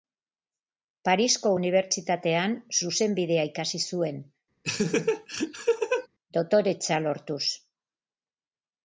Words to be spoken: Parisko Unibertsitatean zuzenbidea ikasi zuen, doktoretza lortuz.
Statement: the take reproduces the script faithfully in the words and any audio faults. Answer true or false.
false